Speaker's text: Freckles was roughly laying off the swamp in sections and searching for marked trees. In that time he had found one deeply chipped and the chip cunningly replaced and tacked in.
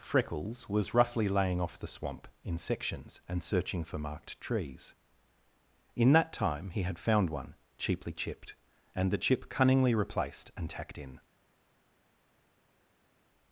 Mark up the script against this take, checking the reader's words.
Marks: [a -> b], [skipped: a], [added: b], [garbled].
Freckles was roughly laying off the swamp in sections and searching for marked trees. In that time he had found one [deeply -> cheaply] chipped and the chip cunningly replaced and tacked in.